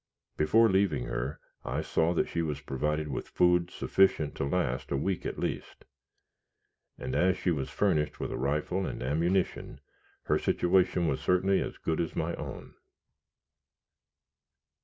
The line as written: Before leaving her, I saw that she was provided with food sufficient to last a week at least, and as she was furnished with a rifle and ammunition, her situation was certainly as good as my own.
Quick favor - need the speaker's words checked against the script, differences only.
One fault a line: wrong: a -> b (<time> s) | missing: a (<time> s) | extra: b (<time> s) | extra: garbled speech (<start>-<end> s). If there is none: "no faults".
no faults